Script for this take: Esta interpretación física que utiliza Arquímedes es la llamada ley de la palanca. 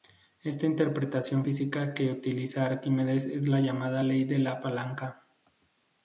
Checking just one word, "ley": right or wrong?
right